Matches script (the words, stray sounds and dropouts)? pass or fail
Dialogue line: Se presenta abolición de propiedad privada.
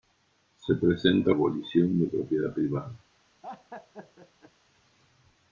fail